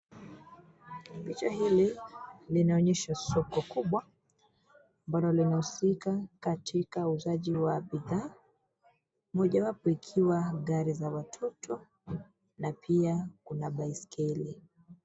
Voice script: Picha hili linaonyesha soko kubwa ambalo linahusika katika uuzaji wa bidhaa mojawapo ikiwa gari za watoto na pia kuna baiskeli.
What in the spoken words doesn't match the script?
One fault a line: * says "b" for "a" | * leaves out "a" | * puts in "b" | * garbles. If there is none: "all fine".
all fine